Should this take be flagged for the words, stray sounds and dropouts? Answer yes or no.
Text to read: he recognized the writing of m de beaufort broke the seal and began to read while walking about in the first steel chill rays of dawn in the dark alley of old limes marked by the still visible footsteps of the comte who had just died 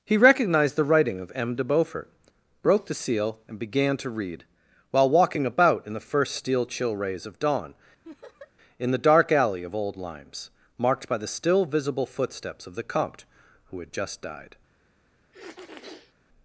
yes